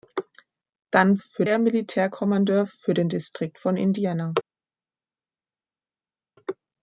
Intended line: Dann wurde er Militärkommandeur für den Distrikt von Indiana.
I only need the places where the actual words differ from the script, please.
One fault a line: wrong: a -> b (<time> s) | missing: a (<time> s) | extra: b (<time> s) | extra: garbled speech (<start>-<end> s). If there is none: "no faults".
wrong: wurde -> für (1.2 s)